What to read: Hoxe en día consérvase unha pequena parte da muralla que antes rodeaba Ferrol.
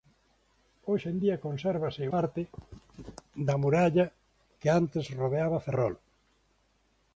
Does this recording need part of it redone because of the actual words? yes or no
yes